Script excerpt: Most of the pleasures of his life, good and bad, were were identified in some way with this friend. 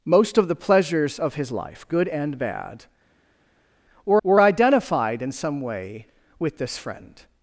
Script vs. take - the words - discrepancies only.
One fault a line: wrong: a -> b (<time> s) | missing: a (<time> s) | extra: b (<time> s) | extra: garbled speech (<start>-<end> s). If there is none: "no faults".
no faults